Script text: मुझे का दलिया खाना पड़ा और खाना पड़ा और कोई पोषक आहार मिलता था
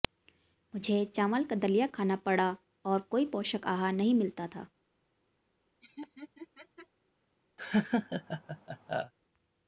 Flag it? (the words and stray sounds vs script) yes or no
yes